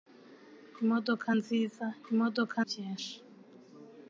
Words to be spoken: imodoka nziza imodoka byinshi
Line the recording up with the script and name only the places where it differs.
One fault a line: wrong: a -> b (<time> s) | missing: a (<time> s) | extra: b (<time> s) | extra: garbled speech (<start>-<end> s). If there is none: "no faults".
no faults